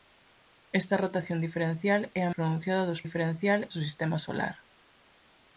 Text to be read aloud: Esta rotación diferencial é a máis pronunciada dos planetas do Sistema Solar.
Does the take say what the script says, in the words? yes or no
no